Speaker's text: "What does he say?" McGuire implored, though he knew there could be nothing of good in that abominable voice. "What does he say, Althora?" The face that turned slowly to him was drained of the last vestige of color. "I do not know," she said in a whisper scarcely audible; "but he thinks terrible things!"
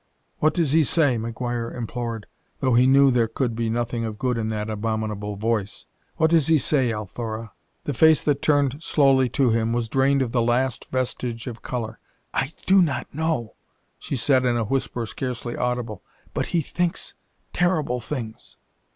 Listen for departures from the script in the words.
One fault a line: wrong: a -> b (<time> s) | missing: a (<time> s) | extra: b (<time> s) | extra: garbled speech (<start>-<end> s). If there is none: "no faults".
no faults